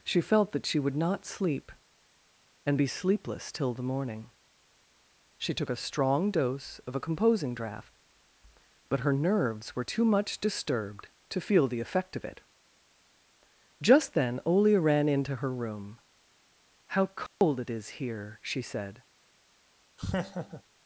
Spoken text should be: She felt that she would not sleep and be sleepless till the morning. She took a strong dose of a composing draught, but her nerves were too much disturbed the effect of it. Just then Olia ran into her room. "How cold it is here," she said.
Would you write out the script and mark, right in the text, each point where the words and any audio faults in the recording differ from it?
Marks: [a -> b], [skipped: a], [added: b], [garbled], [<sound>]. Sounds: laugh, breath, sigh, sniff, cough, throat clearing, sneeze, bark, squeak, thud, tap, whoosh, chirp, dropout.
She felt that she would not sleep and be sleepless till the morning. She took a strong dose of a composing draught, but her nerves were too much disturbed [added: to feel] the effect of it. Just then Olia ran into her room. "How cold [dropout] it is here," she said. [laugh]